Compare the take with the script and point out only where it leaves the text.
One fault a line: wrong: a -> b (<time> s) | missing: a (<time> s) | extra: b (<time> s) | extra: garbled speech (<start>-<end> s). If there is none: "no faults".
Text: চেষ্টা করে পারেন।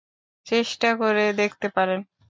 extra: দেখতে (1.4 s)